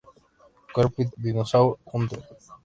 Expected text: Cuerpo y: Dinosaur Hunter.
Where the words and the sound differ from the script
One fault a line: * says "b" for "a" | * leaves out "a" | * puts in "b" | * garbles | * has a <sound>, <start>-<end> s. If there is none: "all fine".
all fine